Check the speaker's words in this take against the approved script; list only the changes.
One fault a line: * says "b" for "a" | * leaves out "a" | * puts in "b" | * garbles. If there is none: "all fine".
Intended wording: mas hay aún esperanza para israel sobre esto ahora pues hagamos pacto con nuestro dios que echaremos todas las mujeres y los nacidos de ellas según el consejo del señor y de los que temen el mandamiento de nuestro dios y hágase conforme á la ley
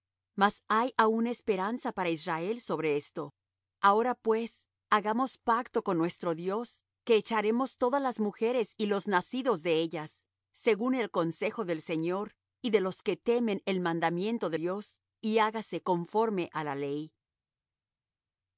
* leaves out "nuestro"